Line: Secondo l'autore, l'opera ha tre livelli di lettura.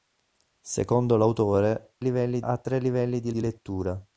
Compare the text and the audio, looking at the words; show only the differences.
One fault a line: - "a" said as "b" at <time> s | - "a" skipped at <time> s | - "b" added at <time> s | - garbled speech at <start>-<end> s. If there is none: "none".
- "l'opera" said as "livelli" at 2.0 s
- "di" added at 3.3 s